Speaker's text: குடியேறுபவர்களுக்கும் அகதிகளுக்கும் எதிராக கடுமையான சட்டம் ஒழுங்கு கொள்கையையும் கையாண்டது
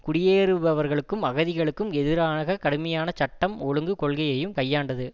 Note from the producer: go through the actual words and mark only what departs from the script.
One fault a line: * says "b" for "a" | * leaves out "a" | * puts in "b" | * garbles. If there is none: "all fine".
all fine